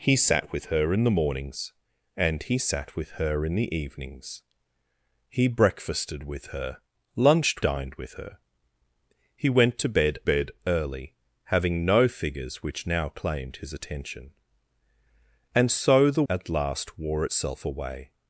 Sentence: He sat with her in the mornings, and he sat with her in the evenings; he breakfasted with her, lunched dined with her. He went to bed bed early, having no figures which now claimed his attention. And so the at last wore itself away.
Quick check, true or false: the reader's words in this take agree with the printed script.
true